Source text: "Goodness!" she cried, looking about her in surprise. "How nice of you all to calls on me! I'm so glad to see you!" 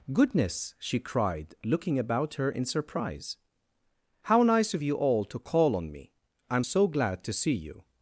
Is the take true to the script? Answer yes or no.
no